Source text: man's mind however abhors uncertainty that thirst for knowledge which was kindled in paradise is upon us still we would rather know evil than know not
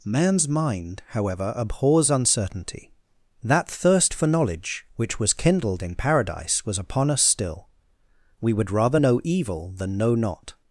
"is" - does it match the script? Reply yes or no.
no